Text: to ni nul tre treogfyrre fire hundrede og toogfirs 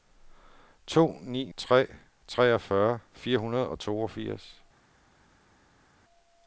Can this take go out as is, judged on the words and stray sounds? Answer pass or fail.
fail